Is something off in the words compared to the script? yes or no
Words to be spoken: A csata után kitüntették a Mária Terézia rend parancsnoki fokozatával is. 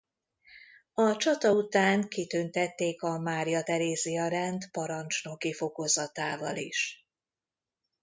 no